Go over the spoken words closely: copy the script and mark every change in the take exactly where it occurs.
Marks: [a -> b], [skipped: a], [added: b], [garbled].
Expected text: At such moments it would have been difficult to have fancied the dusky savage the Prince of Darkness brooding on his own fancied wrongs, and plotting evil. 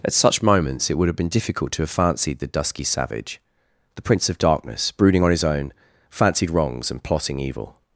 At such moments it would have been difficult to have fancied the dusky savage the Prince of Darkness brooding on his own fancied wrongs, and plotting evil.